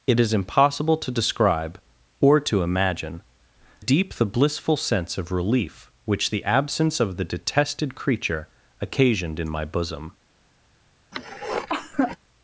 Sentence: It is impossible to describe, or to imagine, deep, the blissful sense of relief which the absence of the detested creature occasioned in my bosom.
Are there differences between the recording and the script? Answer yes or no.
no